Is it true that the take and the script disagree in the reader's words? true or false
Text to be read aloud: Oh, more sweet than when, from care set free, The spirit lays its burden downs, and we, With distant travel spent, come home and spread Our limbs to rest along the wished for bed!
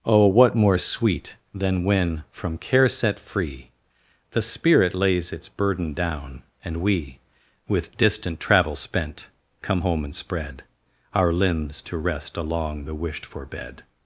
true